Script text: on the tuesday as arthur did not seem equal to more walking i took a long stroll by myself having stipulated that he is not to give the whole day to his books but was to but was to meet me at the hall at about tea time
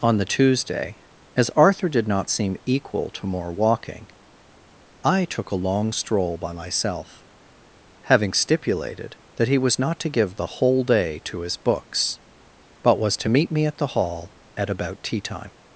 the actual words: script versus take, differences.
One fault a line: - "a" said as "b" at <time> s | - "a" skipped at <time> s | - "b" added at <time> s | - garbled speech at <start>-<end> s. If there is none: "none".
- "is" said as "was" at 9.6 s
- "but was to" skipped at 13.3 s